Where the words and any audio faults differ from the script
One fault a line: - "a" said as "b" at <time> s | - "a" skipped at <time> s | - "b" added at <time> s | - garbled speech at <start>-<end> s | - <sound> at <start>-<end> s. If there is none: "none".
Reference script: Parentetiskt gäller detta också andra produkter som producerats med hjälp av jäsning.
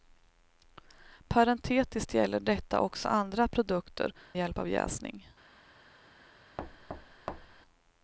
- "som producerats med" skipped at 4.1 s
- thud at 6.6-7.6 s